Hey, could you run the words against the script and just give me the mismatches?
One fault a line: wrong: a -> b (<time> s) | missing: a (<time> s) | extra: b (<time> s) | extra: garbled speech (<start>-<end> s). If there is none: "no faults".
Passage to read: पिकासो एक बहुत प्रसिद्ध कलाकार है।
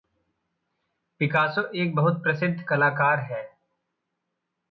no faults